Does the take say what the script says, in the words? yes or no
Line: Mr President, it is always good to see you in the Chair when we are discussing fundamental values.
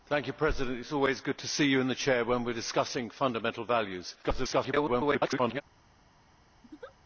no